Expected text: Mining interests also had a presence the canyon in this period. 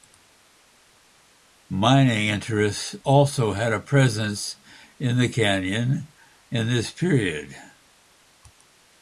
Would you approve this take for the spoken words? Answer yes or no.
no